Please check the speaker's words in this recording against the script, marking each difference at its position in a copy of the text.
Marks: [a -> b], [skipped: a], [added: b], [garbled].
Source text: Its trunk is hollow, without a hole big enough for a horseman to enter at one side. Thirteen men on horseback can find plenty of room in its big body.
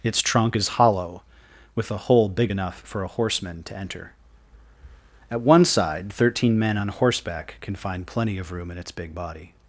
Its trunk is hollow, [without -> with] a hole big enough for a horseman to enter at one side. Thirteen men on horseback can find plenty of room in its big body.